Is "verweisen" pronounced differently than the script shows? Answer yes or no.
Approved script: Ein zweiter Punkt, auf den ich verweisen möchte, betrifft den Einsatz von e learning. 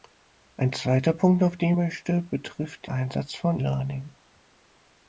yes